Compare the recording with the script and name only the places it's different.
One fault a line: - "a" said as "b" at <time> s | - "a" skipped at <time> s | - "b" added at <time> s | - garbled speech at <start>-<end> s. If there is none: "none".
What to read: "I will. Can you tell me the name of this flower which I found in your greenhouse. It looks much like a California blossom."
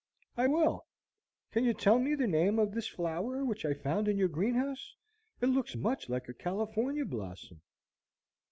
none